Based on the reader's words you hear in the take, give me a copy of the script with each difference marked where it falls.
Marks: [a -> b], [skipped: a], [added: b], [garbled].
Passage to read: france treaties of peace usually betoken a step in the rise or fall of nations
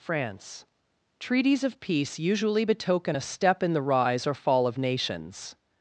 france treaties of peace usually betoken a step in the rise or fall of nations